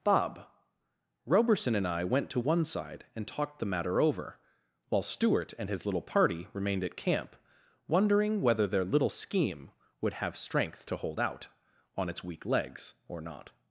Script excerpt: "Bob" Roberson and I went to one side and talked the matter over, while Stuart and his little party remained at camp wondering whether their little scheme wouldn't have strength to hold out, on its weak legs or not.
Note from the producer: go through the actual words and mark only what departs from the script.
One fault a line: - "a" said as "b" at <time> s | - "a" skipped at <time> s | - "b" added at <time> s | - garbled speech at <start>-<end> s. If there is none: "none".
- "wouldn't" said as "would" at 10.0 s